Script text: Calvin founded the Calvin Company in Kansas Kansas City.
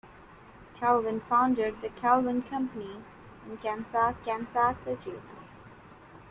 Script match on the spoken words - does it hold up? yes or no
yes